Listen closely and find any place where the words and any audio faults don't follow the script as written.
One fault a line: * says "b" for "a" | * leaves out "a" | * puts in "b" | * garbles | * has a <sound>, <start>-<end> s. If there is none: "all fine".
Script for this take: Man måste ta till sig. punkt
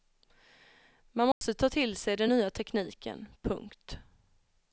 * has a dropout, 1.3-1.4 s
* puts in "den nya tekniken"